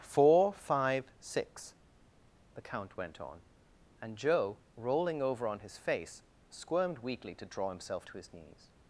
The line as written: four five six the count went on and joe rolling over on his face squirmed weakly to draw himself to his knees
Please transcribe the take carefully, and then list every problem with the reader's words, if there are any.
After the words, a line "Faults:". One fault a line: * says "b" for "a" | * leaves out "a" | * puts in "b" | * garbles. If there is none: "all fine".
four five six the count went on and joe rolling over on his face squirmed weakly to draw himself to his knees
Faults:
all fine